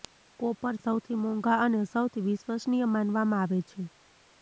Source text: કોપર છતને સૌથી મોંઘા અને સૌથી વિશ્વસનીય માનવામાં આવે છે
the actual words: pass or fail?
fail